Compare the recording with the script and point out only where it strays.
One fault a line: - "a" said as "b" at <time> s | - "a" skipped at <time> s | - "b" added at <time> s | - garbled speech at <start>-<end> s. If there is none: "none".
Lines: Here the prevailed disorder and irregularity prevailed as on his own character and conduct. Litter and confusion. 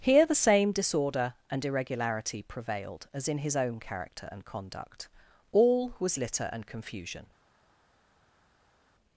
- "prevailed" said as "same" at 0.3 s
- "on" said as "in" at 3.3 s
- "All was" added at 5.5 s